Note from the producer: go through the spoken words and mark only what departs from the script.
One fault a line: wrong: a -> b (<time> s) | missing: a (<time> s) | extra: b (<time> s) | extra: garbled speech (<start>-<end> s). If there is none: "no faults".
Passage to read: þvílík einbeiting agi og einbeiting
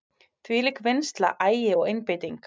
wrong: einbeiting -> vinnsla (0.9 s)